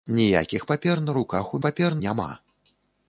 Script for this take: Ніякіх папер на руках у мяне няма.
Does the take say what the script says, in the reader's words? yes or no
no